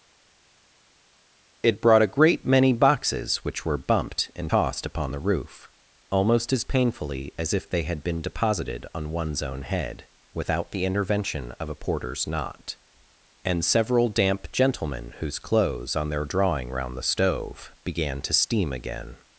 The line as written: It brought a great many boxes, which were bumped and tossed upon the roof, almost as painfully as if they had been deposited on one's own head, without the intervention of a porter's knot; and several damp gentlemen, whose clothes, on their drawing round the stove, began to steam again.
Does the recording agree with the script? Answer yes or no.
yes